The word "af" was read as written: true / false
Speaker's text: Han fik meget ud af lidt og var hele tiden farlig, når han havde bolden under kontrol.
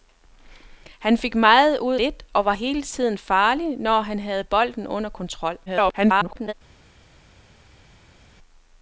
false